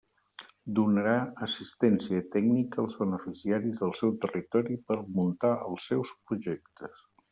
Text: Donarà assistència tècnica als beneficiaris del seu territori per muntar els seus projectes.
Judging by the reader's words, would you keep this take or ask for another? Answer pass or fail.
pass